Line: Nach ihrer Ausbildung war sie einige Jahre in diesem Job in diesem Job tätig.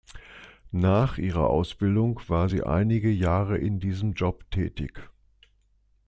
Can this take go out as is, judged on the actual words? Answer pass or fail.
fail